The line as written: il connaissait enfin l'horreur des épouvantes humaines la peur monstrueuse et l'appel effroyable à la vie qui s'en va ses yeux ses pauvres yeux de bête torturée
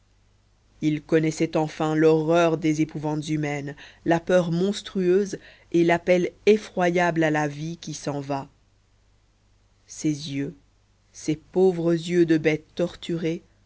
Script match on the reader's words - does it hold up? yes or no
yes